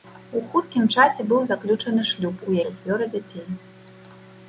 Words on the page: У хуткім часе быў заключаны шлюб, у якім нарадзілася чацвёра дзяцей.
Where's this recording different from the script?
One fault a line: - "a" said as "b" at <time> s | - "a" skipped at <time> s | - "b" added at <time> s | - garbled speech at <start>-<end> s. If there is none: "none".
- "якім нарадзілася" skipped at 2.6 s